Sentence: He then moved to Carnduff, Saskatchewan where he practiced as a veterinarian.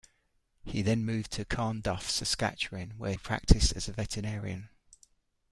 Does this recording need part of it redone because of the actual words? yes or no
yes